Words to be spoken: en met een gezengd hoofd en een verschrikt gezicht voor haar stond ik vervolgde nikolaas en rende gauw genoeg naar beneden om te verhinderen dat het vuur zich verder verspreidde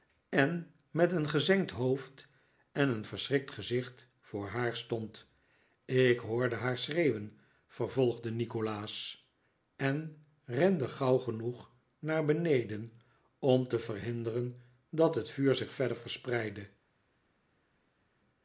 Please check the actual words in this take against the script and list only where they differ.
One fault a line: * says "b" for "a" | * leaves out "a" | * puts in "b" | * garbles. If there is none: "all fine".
* puts in "hoorde haar schreeuwen"